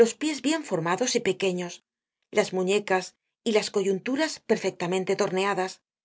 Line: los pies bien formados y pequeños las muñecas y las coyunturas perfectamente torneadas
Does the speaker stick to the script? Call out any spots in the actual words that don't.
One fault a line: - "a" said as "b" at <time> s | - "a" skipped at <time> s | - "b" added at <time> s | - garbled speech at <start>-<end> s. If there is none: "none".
none